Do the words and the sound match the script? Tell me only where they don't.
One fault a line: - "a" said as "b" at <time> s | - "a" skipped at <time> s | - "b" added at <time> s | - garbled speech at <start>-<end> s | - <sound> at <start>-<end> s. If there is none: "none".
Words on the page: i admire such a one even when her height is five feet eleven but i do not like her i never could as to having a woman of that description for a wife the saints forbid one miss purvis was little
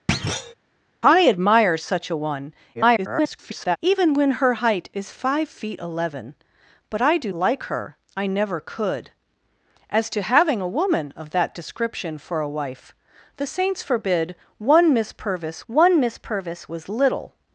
- thud at 0.1-0.5 s
- garbled speech at 2.7-3.8 s
- "not" skipped at 7.3 s
- "one miss purvis" added at 15.7 s